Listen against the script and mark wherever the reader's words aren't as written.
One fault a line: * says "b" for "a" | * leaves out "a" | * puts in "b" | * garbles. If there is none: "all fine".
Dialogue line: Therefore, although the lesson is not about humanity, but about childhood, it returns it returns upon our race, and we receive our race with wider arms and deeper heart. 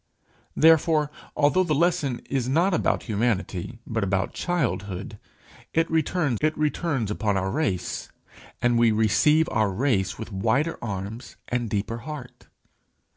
all fine